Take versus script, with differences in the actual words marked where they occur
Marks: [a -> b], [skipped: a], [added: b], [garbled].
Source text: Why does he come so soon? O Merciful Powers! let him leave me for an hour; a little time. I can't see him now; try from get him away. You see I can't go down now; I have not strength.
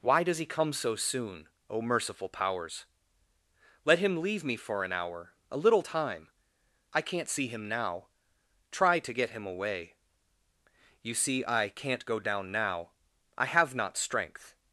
Why does he come so soon? O Merciful Powers! let him leave me for an hour; a little time. I can't see him now; try [from -> to] get him away. You see I can't go down now; I have not strength.